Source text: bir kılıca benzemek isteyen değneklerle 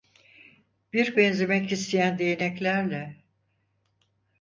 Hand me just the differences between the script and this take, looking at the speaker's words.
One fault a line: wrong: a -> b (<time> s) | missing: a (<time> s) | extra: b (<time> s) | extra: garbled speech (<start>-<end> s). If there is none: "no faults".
missing: kılıca (1.1 s)